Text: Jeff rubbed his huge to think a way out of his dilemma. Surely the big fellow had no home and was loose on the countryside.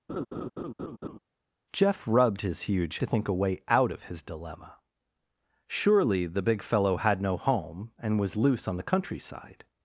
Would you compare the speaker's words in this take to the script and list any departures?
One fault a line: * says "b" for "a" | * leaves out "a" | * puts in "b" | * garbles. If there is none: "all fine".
all fine